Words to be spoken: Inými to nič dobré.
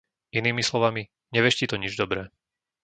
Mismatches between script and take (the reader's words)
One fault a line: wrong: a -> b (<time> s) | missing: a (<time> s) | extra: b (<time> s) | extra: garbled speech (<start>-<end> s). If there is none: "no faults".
extra: slovami neveští (0.7 s)